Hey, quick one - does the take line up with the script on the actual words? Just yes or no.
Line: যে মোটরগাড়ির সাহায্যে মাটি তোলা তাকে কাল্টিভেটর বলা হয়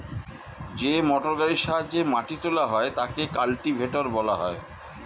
no